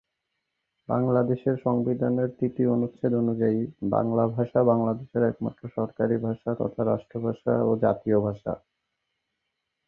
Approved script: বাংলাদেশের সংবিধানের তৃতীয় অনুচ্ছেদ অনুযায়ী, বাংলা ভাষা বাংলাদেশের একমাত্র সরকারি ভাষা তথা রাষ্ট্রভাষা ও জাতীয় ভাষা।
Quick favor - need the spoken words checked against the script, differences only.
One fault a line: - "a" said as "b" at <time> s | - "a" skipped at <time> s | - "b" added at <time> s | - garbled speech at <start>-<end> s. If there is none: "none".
none